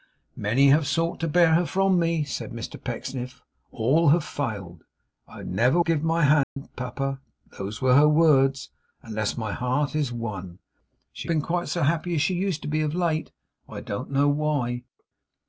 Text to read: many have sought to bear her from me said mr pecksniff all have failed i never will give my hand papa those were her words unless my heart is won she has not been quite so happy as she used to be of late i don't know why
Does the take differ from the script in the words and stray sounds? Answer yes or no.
yes